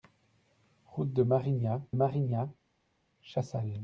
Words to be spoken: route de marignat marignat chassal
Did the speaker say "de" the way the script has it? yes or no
yes